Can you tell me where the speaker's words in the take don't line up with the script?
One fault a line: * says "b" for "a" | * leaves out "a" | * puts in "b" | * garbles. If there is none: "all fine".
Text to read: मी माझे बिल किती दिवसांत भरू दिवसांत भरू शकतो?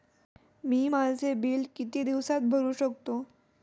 * leaves out "दिवसांत भरू"